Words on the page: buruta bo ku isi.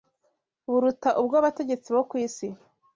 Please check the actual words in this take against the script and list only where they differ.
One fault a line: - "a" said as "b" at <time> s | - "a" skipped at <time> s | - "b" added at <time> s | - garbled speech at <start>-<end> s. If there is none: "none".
- "ubw'abategetsi" added at 1.2 s